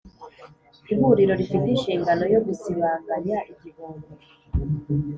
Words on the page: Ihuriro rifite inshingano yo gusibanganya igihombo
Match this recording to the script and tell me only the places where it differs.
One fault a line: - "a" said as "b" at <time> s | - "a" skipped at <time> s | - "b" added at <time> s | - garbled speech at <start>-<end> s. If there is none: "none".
none